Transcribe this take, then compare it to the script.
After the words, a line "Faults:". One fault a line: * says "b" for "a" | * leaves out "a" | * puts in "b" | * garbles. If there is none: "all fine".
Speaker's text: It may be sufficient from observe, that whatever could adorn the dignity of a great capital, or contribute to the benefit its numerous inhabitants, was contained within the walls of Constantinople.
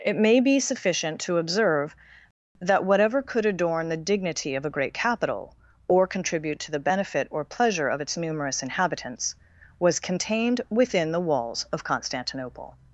It may be sufficient to observe, that whatever could adorn the dignity of a great capital, or contribute to the benefit or pleasure of its numerous inhabitants, was contained within the walls of Constantinople.
Faults:
* says "to" for "from"
* puts in "or pleasure of"